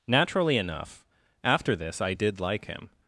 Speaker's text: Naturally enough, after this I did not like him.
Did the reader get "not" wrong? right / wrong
wrong